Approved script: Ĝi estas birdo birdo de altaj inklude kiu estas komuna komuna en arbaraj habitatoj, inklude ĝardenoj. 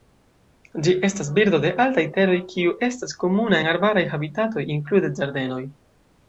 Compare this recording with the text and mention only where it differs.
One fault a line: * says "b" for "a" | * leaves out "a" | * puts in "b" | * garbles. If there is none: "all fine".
* leaves out "birdo"
* says "teroj" for "inklude"
* leaves out "komuna"